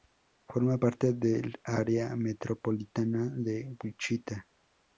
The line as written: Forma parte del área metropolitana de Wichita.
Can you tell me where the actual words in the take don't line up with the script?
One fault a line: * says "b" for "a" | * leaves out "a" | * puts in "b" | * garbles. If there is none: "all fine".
all fine